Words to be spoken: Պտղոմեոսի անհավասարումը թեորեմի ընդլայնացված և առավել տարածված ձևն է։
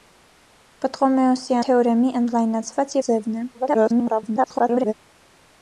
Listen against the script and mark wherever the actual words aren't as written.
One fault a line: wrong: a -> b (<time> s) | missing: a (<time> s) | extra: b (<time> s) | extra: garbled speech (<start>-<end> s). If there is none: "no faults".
missing: անհավասարումը (1.6 s)
missing: և առավել տարածված (3.0 s)
extra: garbled speech (3.5-4.9 s)